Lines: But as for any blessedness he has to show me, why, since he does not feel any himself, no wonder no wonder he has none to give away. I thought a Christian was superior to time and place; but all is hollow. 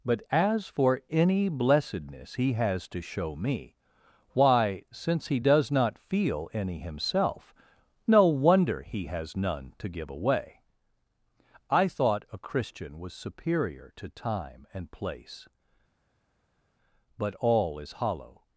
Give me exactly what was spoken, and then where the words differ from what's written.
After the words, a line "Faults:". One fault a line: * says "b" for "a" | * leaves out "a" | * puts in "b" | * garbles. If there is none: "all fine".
But as for any blessedness he has to show me, why, since he does not feel any himself, no wonder he has none to give away. I thought a Christian was superior to time and place; but all is hollow.
Faults:
* leaves out "no wonder"